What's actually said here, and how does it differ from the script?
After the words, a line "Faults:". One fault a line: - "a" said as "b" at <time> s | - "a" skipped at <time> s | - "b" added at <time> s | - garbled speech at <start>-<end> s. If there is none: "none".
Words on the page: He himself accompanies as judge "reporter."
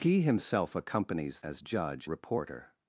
He himself accompanies as judge "reporter."
Faults:
none